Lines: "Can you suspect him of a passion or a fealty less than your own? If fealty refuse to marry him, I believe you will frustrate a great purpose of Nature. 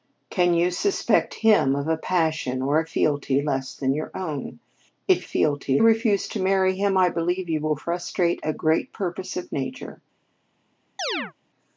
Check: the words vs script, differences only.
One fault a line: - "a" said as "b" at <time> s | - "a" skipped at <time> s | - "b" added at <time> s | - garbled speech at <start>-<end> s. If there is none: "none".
none